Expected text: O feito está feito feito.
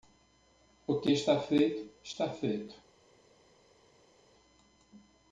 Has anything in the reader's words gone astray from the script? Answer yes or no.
yes